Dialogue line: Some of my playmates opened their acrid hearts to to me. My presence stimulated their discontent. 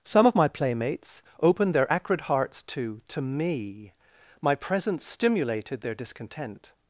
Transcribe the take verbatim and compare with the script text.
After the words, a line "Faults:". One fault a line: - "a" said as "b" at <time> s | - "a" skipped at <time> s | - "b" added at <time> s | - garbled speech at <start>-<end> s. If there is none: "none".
Some of my playmates opened their acrid hearts to to me. My presence stimulated their discontent.
Faults:
none